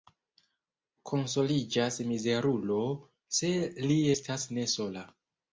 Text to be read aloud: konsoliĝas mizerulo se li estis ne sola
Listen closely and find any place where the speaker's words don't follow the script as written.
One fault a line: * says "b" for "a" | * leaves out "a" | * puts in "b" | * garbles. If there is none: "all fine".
* says "estas" for "estis"